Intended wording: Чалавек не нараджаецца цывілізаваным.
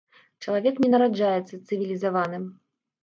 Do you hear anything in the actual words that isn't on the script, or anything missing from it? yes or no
no